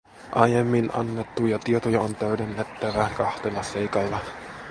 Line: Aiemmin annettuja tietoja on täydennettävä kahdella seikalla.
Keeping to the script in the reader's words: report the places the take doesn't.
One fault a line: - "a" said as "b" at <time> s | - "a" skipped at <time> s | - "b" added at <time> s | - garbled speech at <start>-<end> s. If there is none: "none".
none